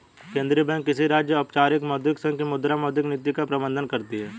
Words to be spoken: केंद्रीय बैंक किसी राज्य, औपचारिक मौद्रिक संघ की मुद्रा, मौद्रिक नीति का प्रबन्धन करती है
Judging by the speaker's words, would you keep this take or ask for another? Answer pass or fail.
pass